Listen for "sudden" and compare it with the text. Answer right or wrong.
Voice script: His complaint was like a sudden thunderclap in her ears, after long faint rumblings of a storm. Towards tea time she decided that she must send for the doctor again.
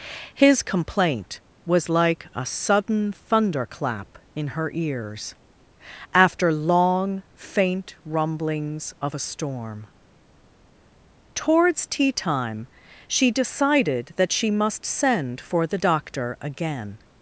right